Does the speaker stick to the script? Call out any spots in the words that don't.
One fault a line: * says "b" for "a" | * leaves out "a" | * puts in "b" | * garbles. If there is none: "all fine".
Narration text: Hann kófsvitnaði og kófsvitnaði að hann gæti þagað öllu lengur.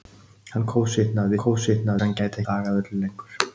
all fine